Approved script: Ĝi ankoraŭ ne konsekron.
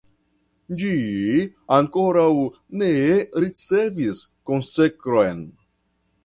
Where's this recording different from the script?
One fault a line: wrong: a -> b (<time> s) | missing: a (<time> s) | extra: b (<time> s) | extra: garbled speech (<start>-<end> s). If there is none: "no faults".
extra: ricevis (3.4 s)